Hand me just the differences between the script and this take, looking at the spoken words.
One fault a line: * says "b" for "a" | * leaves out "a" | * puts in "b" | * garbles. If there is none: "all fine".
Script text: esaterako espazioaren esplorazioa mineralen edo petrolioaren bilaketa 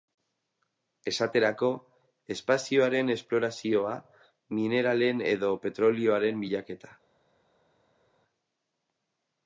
all fine